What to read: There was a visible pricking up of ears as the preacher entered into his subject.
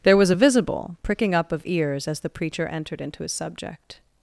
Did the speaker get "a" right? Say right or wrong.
right